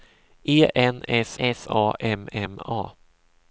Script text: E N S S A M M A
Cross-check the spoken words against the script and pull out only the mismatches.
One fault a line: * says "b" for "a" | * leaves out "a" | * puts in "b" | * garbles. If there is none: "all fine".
all fine